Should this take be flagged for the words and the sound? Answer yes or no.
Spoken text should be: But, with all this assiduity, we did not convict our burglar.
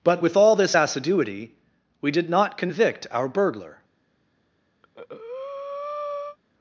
yes